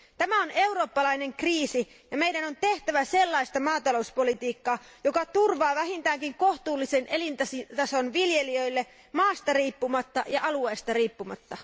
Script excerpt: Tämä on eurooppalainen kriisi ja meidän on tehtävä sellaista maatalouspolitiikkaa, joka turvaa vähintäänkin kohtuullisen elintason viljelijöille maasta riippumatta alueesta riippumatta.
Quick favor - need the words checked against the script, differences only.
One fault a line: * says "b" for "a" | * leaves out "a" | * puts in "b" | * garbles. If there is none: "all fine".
* puts in "ja"